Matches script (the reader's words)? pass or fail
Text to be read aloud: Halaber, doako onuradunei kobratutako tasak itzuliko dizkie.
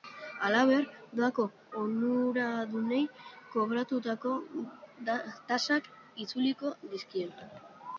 pass